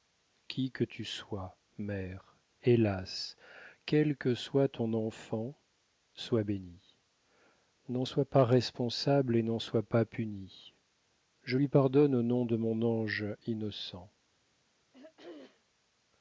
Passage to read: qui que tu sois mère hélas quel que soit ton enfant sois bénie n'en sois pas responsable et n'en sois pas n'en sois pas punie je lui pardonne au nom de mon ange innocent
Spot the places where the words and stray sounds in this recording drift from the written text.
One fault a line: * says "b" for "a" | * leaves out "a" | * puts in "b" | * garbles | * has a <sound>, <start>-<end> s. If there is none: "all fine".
* leaves out "n'en sois pas"
* has a throat clearing, 14.9-15.6 s